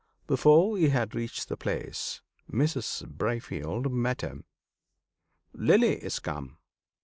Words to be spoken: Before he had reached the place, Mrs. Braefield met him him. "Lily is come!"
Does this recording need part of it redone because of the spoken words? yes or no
yes